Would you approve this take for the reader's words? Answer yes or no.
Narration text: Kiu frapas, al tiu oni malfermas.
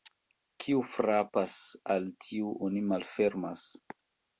yes